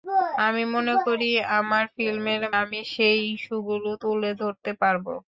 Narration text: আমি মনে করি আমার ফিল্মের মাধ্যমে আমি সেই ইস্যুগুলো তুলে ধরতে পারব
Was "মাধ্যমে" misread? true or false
true